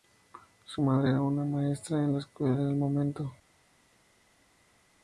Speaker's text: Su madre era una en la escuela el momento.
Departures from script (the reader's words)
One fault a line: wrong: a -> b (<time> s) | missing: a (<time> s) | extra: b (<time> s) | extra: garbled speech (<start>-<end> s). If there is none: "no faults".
extra: maestra (1.4 s)
extra: en (2.5 s)